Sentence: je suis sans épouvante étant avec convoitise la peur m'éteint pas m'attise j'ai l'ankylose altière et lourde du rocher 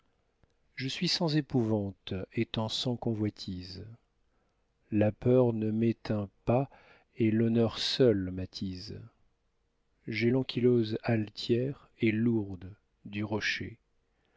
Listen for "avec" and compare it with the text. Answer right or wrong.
wrong